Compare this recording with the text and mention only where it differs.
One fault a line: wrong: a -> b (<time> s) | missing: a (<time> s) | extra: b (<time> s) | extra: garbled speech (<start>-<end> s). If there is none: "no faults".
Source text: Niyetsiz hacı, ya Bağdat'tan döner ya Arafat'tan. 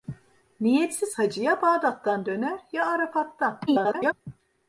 extra: garbled speech (3.7-4.1 s)